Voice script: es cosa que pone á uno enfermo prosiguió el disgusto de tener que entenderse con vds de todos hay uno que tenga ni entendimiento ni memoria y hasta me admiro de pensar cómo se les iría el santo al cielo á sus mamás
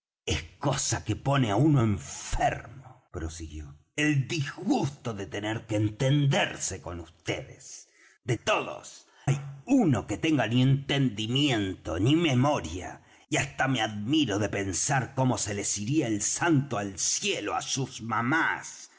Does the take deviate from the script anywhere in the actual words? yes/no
no